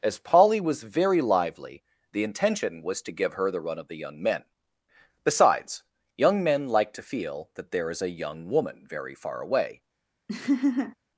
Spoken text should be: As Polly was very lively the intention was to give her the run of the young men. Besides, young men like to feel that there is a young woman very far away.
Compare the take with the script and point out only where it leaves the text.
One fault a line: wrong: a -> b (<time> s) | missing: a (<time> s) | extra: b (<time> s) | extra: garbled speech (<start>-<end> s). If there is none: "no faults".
no faults